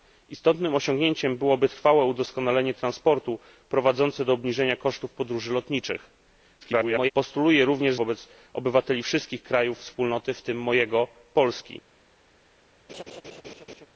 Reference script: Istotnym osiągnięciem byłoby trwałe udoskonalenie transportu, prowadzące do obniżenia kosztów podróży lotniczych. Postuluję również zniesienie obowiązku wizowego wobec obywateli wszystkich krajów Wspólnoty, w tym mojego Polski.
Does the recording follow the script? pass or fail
fail